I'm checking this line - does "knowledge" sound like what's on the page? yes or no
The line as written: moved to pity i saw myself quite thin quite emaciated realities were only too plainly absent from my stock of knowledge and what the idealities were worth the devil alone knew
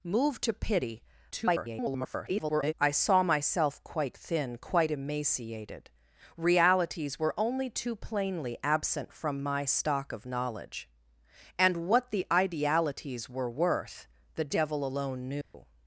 yes